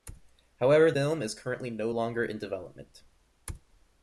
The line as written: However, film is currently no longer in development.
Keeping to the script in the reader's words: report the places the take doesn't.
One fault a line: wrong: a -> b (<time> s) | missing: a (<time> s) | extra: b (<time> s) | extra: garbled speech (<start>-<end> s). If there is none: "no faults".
no faults